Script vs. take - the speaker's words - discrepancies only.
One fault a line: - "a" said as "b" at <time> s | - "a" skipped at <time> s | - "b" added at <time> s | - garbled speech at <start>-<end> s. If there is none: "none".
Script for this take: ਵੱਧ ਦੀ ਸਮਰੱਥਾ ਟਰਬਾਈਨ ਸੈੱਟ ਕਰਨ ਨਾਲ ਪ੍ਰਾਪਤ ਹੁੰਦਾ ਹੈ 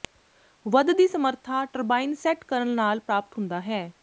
none